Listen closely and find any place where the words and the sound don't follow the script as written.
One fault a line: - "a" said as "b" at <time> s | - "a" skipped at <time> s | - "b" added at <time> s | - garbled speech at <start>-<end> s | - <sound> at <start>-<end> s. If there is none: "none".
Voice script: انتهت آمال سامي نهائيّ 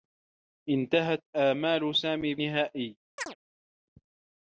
- chirp at 3.2-3.4 s